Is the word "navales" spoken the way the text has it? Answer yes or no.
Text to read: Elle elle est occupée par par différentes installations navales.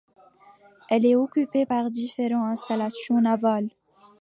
yes